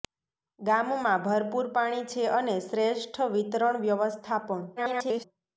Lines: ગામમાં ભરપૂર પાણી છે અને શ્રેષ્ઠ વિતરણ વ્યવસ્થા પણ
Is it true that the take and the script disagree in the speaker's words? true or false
true